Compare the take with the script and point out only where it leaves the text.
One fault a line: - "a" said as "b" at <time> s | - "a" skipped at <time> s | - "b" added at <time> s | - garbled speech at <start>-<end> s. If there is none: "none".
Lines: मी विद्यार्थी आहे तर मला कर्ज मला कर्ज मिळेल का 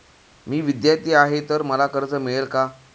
- "मला कर्ज" skipped at 2.1 s